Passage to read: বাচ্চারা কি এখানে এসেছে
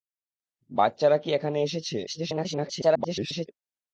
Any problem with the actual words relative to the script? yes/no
yes